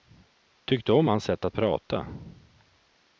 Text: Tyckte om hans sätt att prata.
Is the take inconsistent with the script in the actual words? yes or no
no